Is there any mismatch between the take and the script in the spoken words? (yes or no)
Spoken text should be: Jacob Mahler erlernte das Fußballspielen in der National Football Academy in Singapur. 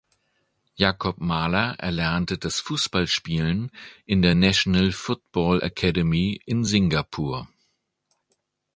no